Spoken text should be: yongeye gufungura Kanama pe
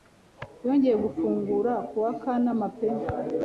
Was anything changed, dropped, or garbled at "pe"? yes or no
no